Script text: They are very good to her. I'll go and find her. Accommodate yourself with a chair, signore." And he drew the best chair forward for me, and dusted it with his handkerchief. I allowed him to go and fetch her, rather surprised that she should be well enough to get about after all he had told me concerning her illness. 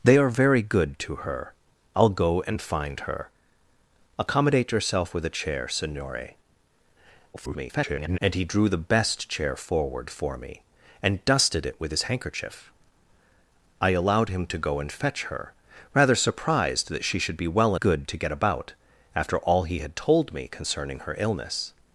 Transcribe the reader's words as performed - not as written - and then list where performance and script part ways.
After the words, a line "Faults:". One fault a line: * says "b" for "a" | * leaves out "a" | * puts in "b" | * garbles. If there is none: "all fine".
They are very good to her. I'll go and find her. Accommodate yourself with a chair, signore." [garbled] And he drew the best chair forward for me, and dusted it with his handkerchief. I allowed him to go and fetch her, rather surprised that she should be well good to get about after all he had told me concerning her illness.
Faults:
* garbles
* says "good" for "enough"